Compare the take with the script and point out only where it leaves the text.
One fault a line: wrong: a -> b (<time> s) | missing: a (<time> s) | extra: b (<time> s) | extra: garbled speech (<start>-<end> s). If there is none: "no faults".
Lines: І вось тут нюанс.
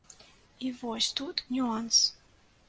no faults